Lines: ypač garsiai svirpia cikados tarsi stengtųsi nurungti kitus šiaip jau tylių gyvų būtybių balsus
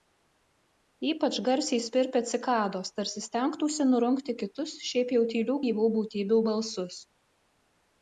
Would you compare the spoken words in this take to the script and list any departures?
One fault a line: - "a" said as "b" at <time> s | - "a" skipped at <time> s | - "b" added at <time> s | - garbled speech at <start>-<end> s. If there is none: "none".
none